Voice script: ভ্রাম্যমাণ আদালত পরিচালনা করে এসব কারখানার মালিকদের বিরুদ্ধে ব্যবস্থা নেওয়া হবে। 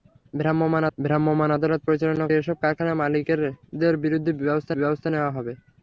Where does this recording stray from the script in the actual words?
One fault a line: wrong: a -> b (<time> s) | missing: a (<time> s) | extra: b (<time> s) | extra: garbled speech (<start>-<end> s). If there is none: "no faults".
extra: ভ্রাম্যমাণ (1.0 s)
missing: করে (2.3 s)
extra: ব্যবস্থা (4.8 s)